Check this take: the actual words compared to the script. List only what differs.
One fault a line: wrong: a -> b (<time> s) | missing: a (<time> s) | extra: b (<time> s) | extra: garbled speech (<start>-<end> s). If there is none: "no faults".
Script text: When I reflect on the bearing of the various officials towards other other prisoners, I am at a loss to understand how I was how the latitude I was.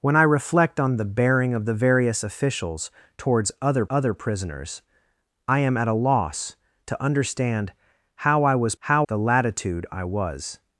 no faults